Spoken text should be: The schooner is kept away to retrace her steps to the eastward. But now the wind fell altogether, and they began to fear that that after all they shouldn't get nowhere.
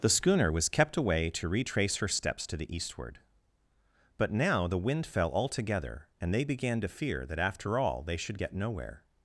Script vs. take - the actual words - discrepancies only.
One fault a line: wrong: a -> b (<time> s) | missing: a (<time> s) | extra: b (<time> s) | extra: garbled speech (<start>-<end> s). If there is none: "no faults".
wrong: is -> was (0.5 s)
missing: that (7.4 s)
wrong: shouldn't -> should (8.2 s)